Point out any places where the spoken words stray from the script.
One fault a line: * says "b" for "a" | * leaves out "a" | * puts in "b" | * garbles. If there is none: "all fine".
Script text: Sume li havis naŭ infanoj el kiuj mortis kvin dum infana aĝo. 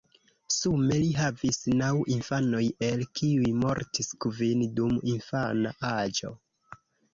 all fine